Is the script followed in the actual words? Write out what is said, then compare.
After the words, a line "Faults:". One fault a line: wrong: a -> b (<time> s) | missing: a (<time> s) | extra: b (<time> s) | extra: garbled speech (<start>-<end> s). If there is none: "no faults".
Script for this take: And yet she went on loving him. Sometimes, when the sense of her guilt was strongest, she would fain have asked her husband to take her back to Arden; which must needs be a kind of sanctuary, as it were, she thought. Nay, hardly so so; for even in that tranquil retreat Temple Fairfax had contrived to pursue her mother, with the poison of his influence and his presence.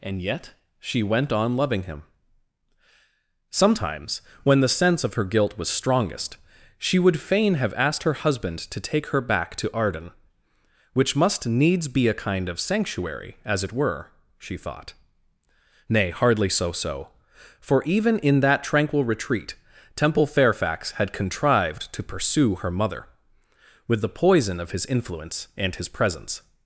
And yet she went on loving him. Sometimes, when the sense of her guilt was strongest, she would fain have asked her husband to take her back to Arden; which must needs be a kind of sanctuary, as it were, she thought. Nay, hardly so so; for even in that tranquil retreat Temple Fairfax had contrived to pursue her mother, with the poison of his influence and his presence.
Faults:
no faults